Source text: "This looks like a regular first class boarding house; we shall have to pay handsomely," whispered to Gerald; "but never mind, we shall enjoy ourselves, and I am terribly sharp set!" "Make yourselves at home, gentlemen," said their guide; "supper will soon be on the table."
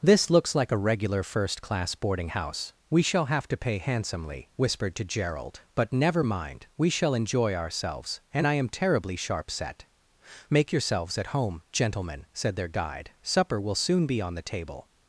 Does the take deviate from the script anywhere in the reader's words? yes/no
no